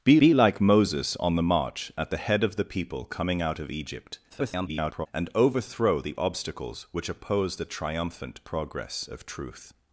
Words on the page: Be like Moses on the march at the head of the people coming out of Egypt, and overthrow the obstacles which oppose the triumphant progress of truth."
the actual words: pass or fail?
fail